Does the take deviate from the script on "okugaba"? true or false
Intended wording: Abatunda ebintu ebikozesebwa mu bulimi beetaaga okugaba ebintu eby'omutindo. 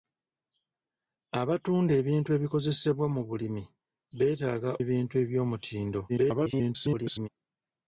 true